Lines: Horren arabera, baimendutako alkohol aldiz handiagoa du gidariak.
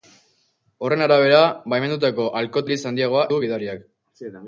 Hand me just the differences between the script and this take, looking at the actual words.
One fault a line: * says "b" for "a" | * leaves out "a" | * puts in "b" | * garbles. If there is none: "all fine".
all fine